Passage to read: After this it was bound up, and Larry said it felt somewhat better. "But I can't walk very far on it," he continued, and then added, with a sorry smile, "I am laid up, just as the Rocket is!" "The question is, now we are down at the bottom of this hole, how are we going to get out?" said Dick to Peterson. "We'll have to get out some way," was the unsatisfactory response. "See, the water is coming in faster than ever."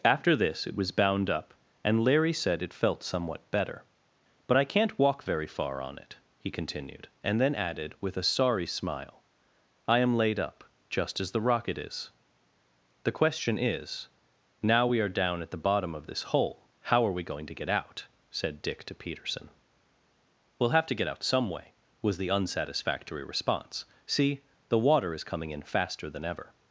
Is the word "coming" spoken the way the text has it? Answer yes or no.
yes